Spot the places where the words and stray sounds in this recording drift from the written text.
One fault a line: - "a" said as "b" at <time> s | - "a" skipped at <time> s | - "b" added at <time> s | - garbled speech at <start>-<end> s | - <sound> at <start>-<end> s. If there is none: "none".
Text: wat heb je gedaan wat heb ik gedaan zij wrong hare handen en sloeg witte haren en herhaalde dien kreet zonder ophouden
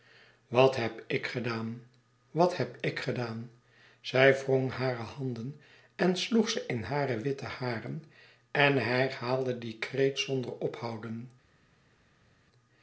- "je" said as "ik" at 1.1 s
- "ze in hare" added at 6.5 s